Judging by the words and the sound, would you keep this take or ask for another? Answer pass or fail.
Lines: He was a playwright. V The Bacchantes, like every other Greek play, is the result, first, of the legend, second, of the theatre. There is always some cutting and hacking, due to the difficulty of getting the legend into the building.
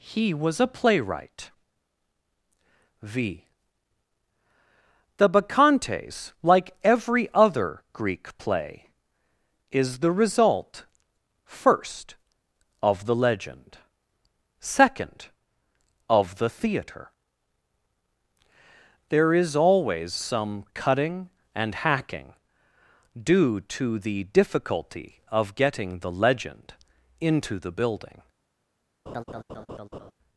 fail